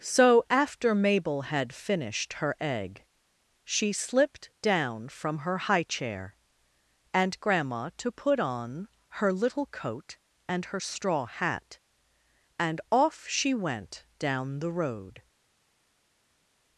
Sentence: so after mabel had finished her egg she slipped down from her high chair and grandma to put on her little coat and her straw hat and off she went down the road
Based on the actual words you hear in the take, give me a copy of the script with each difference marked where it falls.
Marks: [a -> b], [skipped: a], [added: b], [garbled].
so after mabel had finished her egg she slipped down from her high chair and grandma to put on her little coat and her straw hat and off she went down the road